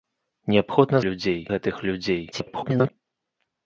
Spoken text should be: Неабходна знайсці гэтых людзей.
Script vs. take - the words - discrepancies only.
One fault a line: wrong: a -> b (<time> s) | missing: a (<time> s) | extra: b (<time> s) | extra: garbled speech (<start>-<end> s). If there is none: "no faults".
wrong: знайсці -> людзей (1.1 s)
extra: garbled speech (2.3-2.9 s)